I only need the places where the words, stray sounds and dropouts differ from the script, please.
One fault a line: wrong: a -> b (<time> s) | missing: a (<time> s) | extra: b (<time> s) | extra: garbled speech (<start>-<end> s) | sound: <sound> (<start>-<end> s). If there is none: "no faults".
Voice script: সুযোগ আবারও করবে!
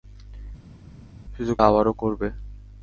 no faults